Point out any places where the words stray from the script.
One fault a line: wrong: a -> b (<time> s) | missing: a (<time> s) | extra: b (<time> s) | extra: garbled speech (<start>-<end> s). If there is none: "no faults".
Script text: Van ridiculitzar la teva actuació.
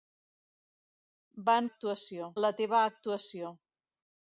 wrong: ridiculitzar -> actuació (1.7 s)